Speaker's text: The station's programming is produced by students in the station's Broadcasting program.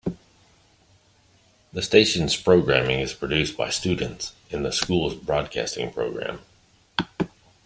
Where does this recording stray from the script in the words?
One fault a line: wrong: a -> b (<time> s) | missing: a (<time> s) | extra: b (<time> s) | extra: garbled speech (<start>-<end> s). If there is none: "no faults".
wrong: station's -> school's (4.7 s)